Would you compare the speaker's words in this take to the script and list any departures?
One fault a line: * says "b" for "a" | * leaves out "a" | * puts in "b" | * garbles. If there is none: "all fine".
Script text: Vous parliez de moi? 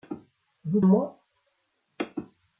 * leaves out "parliez de"